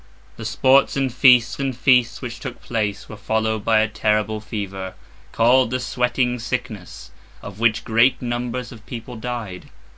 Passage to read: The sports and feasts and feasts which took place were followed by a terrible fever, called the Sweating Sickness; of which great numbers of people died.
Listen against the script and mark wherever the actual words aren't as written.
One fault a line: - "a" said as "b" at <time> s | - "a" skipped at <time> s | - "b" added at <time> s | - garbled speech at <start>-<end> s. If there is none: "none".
none